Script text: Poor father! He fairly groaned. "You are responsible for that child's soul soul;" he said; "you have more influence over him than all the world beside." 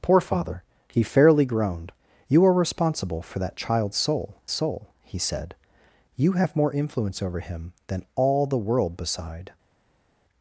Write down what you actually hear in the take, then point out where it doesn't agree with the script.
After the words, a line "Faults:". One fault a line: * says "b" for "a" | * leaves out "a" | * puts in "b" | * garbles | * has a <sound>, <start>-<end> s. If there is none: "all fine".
Poor father! He fairly groaned. "You are responsible for that child's soul soul;" he said; "you have more influence over him than all the world beside."
Faults:
all fine